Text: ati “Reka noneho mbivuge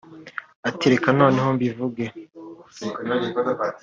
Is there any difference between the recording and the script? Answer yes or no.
no